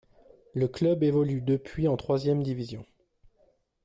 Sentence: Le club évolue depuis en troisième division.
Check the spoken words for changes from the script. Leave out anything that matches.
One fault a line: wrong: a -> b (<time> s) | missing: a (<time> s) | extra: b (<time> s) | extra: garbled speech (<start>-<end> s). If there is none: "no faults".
no faults